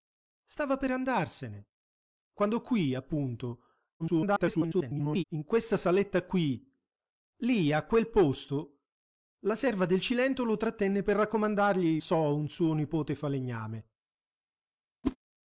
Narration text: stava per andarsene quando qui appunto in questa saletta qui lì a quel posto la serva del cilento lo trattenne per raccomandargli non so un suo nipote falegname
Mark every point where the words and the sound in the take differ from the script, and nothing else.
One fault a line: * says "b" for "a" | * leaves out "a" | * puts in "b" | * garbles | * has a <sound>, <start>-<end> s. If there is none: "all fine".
* garbles
* leaves out "non"
* has a whoosh, 15.0-15.2 s